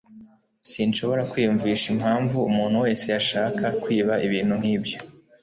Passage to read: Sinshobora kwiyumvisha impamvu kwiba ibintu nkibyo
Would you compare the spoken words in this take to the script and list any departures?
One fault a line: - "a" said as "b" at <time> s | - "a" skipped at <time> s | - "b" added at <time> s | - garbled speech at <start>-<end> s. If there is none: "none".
- "umuntu wese yashaka" added at 2.5 s